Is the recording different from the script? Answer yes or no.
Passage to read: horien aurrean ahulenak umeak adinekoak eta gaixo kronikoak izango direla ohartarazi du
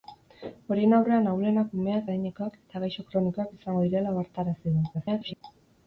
yes